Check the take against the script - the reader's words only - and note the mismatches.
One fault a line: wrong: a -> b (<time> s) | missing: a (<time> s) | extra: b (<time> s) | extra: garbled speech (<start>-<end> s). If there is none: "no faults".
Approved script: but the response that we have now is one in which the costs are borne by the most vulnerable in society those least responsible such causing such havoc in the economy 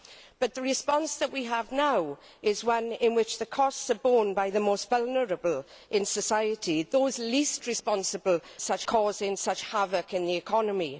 no faults